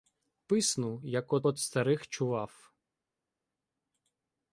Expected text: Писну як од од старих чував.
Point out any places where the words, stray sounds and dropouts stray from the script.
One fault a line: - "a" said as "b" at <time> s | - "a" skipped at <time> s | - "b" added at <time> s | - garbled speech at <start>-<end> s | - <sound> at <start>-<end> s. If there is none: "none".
none